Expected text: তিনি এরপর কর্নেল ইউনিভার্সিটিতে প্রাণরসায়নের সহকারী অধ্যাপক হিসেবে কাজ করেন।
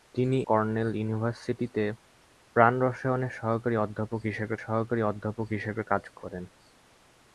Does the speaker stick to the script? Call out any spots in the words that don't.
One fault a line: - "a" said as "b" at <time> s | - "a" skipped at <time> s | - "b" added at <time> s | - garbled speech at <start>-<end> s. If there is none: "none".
- "এরপর" skipped at 0.4 s
- "সহকারী অধ্যাপক হিসেবে" added at 4.6 s